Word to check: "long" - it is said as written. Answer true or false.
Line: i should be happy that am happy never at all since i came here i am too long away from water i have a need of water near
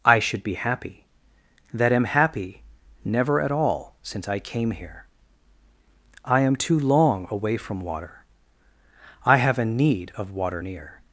true